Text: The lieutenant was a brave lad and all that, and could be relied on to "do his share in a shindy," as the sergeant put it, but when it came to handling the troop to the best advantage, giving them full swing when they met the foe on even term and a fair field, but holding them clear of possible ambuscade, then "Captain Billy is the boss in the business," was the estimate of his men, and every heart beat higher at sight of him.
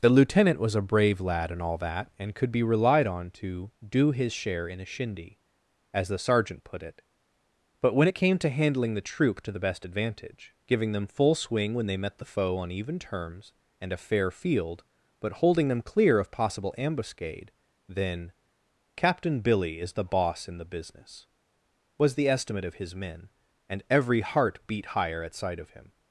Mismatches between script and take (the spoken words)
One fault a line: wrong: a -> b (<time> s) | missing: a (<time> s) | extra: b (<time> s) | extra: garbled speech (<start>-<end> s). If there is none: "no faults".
wrong: term -> terms (13.0 s)